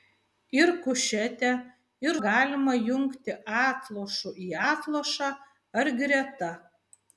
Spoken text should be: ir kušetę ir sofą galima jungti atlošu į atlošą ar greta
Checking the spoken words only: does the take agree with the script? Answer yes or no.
no